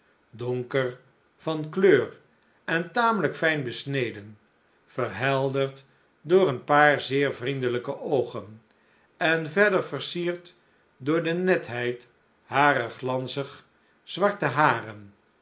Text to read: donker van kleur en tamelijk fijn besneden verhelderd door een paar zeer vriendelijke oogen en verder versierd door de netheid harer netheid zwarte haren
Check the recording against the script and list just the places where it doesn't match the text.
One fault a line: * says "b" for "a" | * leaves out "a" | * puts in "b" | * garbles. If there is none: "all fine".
* says "glanzig" for "netheid"